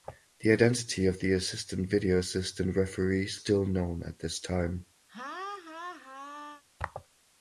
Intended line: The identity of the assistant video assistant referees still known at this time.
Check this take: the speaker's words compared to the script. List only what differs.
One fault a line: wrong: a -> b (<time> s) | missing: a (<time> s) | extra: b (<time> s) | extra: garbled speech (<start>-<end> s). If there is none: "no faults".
no faults